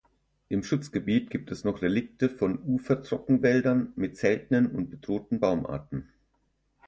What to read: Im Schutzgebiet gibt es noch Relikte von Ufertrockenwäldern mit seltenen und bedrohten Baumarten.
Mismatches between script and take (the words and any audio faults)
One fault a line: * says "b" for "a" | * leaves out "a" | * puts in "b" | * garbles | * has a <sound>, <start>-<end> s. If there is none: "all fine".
all fine